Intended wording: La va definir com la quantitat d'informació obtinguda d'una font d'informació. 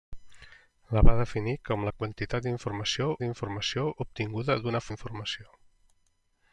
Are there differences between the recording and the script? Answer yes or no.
yes